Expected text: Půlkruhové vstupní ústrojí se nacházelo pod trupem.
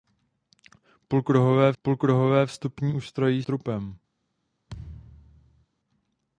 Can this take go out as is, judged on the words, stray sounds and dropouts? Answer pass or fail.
fail